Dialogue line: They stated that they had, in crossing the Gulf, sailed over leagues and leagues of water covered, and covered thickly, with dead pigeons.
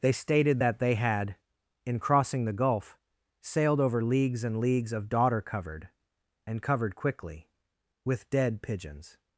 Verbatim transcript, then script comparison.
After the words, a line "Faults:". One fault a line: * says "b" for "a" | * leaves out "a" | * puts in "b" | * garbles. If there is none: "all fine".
They stated that they had, in crossing the Gulf, sailed over leagues and leagues of daughter covered, and covered quickly, with dead pigeons.
Faults:
* says "daughter" for "water"
* says "quickly" for "thickly"